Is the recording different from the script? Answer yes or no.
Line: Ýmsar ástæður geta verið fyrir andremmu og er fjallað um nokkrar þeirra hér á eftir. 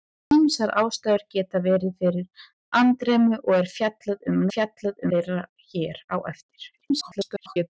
yes